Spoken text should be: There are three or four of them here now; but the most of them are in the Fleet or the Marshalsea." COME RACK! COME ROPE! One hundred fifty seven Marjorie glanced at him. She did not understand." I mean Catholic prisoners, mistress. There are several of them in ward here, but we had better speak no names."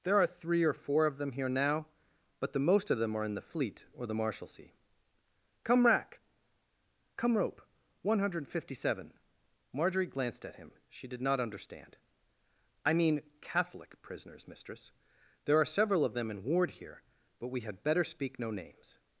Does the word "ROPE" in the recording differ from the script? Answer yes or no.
no